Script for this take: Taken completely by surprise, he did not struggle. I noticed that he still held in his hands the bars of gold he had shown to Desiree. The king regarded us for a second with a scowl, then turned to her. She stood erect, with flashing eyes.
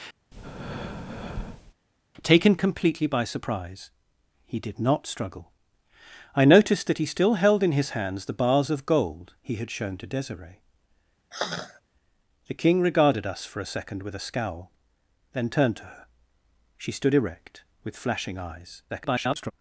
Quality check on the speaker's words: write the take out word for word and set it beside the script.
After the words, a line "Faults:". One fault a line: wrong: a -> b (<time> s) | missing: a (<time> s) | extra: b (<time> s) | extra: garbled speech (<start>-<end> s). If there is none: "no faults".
Taken completely by surprise, he did not struggle. I noticed that he still held in his hands the bars of gold he had shown to Desiree. The king regarded us for a second with a scowl, then turned to her. She stood erect, with flashing eyes. [garbled]
Faults:
extra: garbled speech (18.9-19.5 s)